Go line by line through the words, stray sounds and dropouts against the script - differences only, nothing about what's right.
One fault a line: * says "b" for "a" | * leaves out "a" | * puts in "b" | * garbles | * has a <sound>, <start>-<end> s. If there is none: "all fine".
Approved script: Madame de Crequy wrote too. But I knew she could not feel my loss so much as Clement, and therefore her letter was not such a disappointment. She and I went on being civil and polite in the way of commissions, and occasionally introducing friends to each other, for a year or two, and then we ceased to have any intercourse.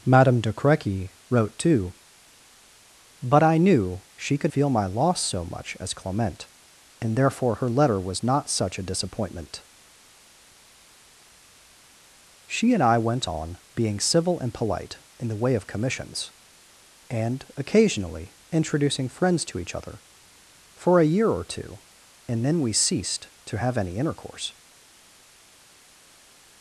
* leaves out "not"